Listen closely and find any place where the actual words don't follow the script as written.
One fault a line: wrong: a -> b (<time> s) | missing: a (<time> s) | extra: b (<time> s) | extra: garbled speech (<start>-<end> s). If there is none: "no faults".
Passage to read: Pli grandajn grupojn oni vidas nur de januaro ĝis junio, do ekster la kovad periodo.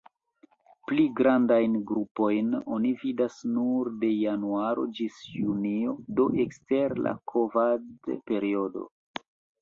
no faults